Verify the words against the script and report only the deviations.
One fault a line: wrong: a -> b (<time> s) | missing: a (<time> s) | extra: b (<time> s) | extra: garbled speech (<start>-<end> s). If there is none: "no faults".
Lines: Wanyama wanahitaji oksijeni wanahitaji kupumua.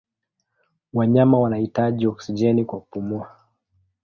wrong: wanahitaji -> kwa (2.6 s)